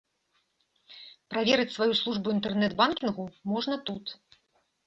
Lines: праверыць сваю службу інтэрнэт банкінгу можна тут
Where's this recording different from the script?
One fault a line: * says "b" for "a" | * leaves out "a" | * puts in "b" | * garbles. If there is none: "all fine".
all fine